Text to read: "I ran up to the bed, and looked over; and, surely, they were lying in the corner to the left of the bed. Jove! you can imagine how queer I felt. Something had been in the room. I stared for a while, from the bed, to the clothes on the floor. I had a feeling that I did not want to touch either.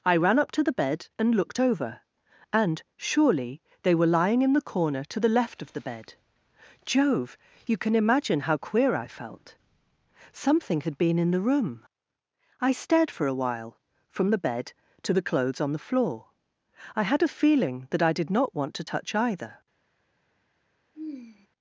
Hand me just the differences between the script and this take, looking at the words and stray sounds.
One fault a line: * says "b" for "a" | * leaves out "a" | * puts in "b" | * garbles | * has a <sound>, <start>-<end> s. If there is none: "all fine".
* has a sigh, 20.9-21.5 s